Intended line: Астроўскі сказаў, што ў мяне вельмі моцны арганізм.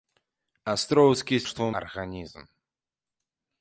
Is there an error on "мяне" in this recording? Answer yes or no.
yes